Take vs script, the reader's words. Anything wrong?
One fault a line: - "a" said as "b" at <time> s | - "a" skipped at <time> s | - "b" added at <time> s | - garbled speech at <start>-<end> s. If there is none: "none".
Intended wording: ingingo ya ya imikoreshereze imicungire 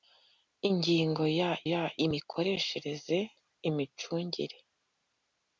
none